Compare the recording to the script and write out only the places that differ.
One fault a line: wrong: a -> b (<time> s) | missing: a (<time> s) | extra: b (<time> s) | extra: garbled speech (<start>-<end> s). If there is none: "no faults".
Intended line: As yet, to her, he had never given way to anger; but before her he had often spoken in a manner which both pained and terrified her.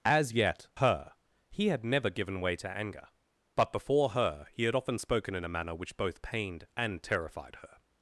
missing: to (0.7 s)